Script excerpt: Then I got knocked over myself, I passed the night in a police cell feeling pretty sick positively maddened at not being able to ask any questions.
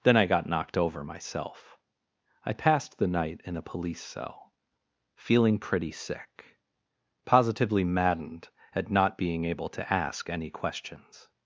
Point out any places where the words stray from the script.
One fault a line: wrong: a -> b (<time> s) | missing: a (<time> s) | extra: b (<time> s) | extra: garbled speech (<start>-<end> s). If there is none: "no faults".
no faults